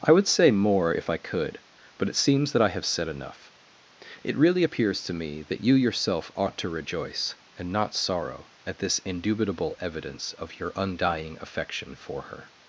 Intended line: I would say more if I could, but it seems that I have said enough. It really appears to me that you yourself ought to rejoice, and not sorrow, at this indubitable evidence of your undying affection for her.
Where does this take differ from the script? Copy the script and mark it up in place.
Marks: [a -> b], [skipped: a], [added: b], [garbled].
I would say more if I could, but it seems that I have said enough. It really appears to me that you yourself ought to rejoice, and not sorrow, at this indubitable evidence of your undying affection for her.